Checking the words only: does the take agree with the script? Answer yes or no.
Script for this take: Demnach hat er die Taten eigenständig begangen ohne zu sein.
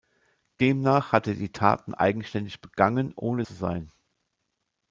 yes